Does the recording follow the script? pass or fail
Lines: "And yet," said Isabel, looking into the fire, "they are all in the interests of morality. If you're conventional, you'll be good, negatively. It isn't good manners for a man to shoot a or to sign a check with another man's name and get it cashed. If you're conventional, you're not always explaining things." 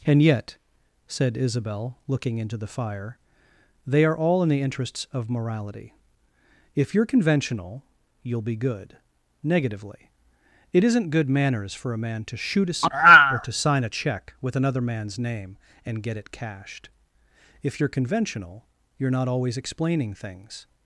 pass